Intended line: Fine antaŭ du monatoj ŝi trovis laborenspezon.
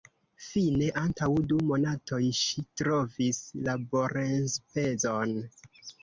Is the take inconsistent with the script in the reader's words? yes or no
no